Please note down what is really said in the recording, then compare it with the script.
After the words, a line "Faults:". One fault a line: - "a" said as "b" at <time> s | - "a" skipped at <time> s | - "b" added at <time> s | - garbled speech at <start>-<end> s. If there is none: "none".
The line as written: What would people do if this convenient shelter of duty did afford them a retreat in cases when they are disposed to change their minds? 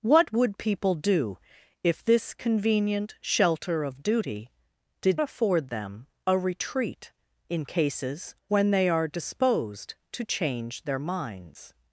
What would people do if this convenient shelter of duty did afford them a retreat in cases when they are disposed to change their minds?
Faults:
none